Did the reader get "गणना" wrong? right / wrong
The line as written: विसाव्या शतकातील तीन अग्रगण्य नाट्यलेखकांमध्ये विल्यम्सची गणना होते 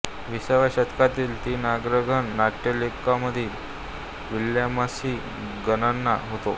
right